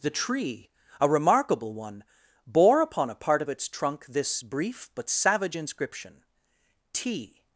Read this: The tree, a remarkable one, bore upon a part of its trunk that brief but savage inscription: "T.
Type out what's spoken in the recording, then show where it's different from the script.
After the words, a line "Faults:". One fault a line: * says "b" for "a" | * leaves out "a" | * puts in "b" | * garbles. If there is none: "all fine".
The tree, a remarkable one, bore upon a part of its trunk this brief but savage inscription: "T.
Faults:
* says "this" for "that"